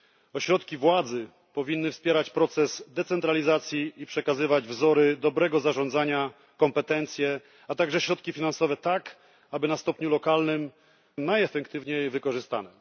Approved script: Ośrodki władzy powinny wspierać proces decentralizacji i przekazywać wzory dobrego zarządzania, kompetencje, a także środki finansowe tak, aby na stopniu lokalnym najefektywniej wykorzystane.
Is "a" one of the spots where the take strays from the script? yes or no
no